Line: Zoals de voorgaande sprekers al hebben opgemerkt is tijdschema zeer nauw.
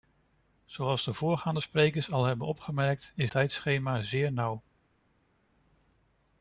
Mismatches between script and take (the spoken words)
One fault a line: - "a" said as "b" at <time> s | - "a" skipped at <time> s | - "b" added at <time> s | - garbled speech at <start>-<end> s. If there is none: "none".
none